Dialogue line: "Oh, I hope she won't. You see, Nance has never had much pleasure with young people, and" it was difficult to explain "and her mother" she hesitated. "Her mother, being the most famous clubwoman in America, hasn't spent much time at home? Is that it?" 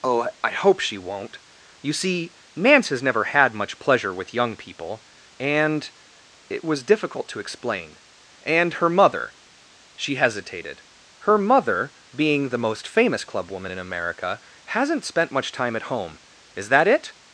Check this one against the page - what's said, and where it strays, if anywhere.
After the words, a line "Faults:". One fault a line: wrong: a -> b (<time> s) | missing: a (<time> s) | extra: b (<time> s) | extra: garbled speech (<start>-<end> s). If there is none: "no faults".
"Oh, I hope she won't. You see, Nance has never had much pleasure with young people, and" it was difficult to explain "and her mother" she hesitated. "Her mother, being the most famous clubwoman in America, hasn't spent much time at home? Is that it?"
Faults:
no faults